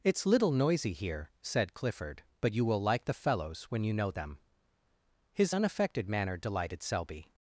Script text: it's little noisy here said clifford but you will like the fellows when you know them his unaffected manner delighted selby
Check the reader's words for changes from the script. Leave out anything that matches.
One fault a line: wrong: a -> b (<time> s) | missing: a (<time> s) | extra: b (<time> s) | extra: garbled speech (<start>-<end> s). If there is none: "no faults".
no faults